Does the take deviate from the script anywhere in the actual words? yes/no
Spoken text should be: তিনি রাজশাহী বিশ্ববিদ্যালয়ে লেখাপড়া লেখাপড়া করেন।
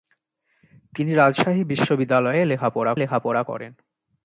no